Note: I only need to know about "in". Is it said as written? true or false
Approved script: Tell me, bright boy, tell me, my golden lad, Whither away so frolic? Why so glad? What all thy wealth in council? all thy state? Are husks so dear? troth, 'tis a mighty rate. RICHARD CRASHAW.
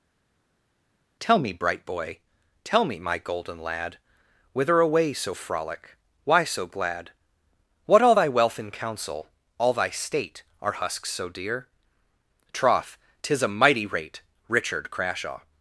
true